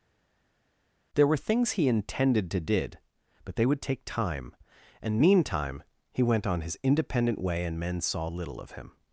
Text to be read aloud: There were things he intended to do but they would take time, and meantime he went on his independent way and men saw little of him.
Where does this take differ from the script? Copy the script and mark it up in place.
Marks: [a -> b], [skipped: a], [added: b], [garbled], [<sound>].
There were things he intended to [do -> did] but they would take time, and meantime he went on his independent way and men saw little of him.